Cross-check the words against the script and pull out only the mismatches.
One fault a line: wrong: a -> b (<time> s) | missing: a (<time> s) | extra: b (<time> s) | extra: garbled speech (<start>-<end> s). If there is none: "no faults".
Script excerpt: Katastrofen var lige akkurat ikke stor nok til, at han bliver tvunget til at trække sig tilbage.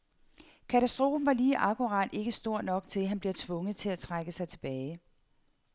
no faults